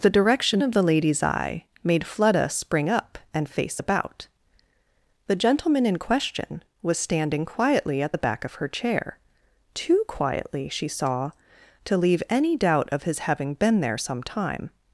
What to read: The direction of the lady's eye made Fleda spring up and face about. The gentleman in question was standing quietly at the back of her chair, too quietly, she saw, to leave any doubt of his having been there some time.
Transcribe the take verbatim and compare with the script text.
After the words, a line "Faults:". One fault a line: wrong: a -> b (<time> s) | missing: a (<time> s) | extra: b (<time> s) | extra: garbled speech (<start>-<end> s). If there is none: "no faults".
The direction of the lady's eye made Fleda spring up and face about. The gentleman in question was standing quietly at the back of her chair, too quietly, she saw, to leave any doubt of his having been there some time.
Faults:
no faults